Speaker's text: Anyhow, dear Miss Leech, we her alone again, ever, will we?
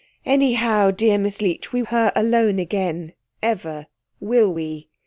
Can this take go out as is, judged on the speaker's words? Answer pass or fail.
pass